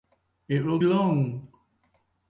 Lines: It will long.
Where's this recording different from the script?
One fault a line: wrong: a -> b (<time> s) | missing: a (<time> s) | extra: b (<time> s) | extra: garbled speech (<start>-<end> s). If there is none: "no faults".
no faults